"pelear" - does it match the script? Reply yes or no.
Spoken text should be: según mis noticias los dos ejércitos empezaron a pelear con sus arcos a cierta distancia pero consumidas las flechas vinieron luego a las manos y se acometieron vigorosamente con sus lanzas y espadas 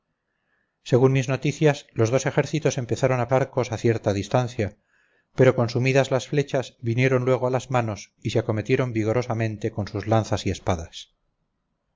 no